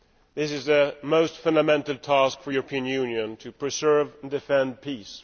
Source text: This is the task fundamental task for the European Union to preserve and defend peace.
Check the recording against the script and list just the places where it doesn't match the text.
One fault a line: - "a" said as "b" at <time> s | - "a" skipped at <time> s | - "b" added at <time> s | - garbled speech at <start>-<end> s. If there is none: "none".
- "task" said as "most" at 1.0 s